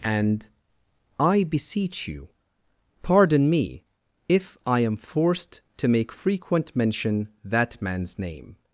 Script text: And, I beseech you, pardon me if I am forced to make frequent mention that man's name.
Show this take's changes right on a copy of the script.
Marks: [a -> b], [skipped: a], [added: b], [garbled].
And, I beseech you, pardon me if I am forced to make frequent mention that man's name.